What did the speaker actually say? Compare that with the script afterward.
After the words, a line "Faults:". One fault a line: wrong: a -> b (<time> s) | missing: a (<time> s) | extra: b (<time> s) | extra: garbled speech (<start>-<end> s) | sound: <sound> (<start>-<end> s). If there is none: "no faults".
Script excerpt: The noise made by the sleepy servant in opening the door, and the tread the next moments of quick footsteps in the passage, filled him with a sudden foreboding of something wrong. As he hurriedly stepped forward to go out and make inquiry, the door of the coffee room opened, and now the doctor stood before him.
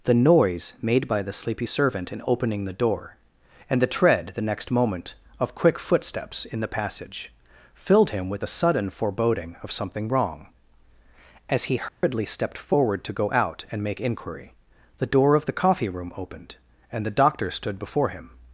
The noise made by the sleepy servant in opening the door, and the tread the next moment of quick footsteps in the passage, filled him with a sudden foreboding of something wrong. As he hurriedly stepped forward to go out and make inquiry, the door of the coffee room opened, and the doctor stood before him.
Faults:
wrong: moments -> moment (4.7 s)
sound: dropout (11.9-12.0 s)
missing: now (17.1 s)